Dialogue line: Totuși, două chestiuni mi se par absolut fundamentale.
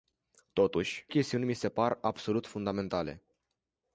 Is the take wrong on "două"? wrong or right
wrong